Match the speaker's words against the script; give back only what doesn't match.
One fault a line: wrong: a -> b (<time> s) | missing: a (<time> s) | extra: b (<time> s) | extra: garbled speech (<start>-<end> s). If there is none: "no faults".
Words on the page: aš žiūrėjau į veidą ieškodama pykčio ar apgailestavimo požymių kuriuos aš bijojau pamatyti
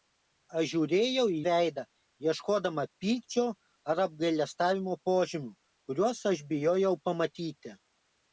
no faults